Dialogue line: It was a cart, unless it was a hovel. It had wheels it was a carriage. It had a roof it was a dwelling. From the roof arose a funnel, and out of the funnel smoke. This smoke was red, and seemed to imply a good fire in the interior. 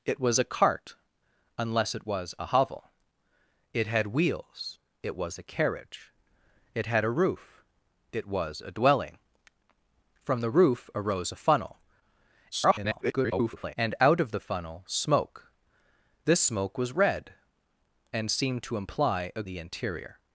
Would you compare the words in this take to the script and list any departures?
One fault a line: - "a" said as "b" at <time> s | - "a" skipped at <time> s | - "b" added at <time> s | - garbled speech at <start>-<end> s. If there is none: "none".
- garbled speech at 12.5-13.8 s
- "good fire in" skipped at 19.4 s